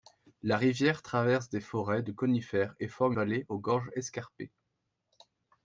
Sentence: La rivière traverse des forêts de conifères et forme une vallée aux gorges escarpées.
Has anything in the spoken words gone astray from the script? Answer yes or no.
yes